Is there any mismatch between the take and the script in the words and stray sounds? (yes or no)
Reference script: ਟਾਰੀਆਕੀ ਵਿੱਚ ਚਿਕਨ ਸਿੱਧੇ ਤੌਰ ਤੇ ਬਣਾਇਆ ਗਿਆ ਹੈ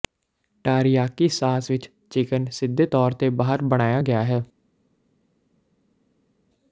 yes